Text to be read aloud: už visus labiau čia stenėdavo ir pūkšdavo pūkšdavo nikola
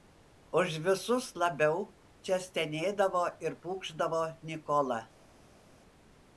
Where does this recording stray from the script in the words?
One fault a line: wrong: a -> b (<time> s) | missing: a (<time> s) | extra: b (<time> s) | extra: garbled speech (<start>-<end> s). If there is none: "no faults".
missing: pūkšdavo (4.2 s)